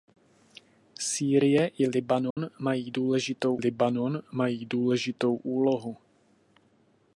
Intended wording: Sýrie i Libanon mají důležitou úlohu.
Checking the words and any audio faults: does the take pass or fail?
fail